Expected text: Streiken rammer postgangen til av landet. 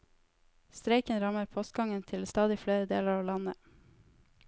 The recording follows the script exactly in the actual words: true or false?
false